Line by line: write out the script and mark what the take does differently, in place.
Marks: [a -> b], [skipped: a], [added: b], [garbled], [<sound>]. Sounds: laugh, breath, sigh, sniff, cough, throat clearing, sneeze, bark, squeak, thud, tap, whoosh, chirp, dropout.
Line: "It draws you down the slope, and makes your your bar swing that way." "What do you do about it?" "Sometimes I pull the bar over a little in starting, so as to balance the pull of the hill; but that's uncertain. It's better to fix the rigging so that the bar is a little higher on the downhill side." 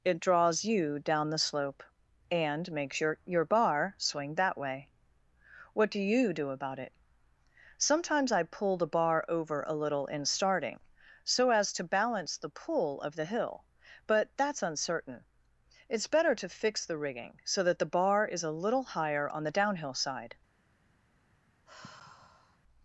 "It draws you down the slope, and makes your your bar swing that way." "What do you do about it?" "Sometimes I pull the bar over a little in starting, so as to balance the pull of the hill; but that's uncertain. It's better to fix the rigging so that the bar is a little higher on the downhill side." [sigh]